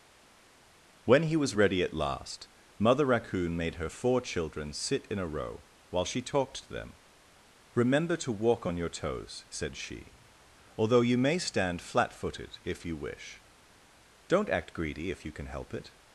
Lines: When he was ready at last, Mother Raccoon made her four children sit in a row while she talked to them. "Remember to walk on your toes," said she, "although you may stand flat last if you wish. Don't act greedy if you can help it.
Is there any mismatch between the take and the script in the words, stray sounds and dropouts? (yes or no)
yes